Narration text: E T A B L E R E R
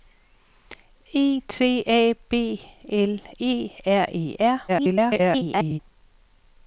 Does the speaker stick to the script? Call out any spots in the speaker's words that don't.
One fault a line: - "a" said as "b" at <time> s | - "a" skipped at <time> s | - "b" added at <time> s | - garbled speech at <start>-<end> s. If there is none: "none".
- garbled speech at 4.7-5.8 s